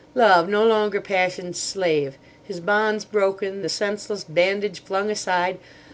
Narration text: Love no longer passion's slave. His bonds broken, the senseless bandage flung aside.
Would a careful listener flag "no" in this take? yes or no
no